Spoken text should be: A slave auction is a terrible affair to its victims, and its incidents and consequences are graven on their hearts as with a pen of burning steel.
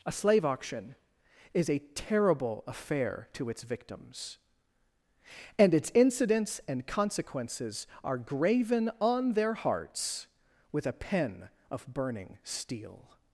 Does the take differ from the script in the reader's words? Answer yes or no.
yes